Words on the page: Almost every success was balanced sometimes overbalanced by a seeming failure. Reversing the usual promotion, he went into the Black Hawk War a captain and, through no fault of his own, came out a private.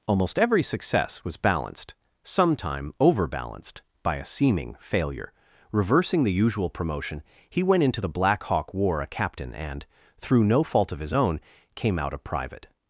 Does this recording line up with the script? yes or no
no